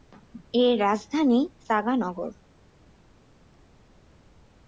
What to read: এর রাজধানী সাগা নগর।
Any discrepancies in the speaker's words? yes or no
no